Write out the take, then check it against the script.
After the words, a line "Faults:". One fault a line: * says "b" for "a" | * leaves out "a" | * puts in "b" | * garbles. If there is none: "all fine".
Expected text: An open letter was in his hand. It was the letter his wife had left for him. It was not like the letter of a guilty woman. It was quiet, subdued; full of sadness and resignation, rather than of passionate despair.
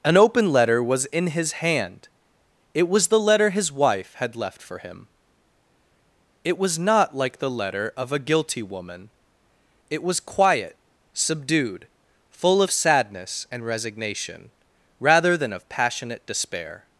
An open letter was in his hand. It was the letter his wife had left for him. It was not like the letter of a guilty woman. It was quiet, subdued; full of sadness and resignation, rather than of passionate despair.
Faults:
all fine